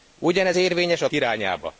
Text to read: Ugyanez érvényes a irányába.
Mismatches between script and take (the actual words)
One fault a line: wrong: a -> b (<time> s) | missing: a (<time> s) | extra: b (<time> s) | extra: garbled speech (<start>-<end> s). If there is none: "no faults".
no faults